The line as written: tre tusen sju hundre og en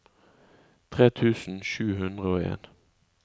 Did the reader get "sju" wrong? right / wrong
right